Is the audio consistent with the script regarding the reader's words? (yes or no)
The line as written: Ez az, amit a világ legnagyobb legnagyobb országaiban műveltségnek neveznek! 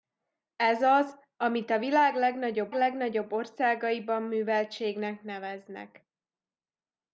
yes